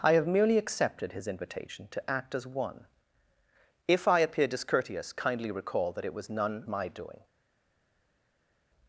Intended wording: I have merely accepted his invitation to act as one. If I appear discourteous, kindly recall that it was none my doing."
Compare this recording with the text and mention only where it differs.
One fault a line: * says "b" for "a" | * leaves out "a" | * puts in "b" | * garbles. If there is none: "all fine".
all fine